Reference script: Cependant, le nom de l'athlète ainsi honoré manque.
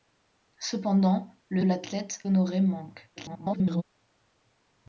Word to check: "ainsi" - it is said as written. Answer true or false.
false